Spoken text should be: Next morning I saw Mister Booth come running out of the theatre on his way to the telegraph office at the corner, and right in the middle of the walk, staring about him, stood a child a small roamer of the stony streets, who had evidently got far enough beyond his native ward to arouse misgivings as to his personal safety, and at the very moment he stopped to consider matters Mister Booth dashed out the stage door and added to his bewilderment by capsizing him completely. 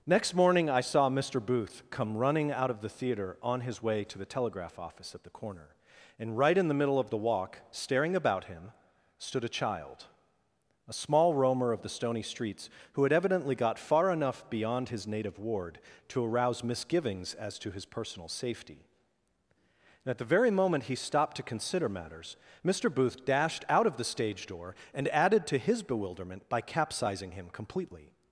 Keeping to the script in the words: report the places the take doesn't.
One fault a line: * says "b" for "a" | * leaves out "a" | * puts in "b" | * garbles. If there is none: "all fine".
* puts in "of"